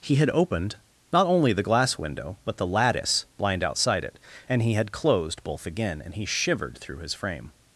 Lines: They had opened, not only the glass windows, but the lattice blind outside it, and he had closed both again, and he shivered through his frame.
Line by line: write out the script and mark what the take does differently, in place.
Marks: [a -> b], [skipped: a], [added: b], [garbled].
[They -> He] had opened, not only the glass [windows, -> window] but the lattice blind outside it, and he had closed both again, and he shivered through his frame.